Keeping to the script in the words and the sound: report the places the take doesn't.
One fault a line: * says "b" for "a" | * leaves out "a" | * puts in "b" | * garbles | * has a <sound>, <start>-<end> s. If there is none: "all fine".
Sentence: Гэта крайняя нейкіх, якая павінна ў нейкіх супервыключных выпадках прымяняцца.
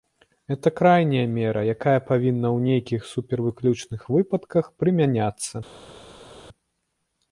* says "мера" for "нейкіх"